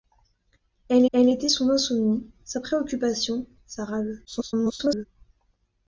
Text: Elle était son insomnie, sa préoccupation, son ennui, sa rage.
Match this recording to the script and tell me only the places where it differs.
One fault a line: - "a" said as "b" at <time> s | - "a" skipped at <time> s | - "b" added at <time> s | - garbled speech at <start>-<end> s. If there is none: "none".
- "elle" added at 1.1 s
- "son ennui" skipped at 3.5 s
- garbled speech at 4.2-5.1 s